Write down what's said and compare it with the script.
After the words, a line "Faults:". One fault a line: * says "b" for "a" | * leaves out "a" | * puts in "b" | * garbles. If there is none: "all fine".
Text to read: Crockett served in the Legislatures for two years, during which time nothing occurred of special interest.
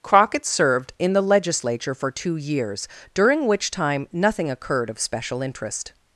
Crockett served in the Legislature for two years, during which time nothing occurred of special interest.
Faults:
* says "Legislature" for "Legislatures"